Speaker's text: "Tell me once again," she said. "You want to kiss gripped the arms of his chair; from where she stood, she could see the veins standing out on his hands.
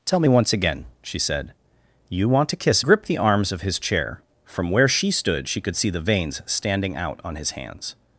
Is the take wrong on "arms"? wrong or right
right